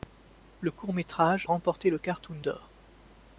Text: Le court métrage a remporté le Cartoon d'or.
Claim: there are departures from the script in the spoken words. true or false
true